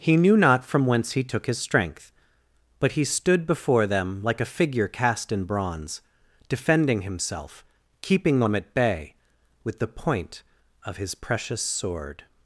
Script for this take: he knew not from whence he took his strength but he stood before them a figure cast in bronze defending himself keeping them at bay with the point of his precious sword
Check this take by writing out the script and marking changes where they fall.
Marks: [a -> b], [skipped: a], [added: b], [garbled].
he knew not from whence he took his strength but he stood before them [added: like] a figure cast in bronze defending himself keeping them at bay with the point of his precious sword